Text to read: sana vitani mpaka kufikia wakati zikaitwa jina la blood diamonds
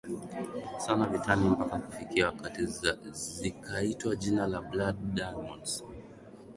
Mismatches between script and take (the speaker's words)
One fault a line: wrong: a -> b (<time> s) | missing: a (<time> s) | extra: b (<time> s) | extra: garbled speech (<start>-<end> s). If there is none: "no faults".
no faults